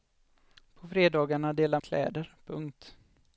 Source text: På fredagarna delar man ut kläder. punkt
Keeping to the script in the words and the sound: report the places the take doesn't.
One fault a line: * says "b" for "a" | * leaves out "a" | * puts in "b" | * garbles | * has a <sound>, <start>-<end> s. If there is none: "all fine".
* leaves out "man ut"